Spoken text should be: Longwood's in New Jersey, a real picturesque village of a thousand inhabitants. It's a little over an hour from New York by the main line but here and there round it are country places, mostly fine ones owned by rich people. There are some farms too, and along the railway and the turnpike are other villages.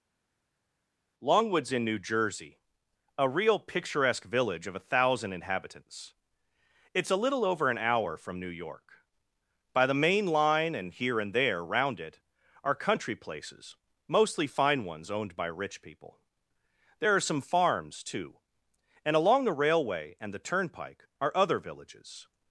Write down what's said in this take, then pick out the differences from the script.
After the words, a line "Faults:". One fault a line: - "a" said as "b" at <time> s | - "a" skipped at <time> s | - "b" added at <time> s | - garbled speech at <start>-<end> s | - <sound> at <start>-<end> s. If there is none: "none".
Longwood's in New Jersey, a real picturesque village of a thousand inhabitants. It's a little over an hour from New York by the main line and here and there round it are country places, mostly fine ones owned by rich people. There are some farms too, and along the railway and the turnpike are other villages.
Faults:
- "but" said as "and" at 10.7 s